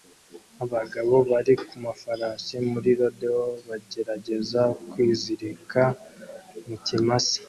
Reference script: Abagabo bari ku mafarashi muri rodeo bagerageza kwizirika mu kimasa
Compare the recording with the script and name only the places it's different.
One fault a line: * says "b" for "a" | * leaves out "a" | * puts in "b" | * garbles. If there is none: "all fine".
all fine